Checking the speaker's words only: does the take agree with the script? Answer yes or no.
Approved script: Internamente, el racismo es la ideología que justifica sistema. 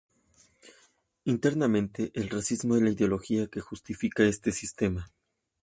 no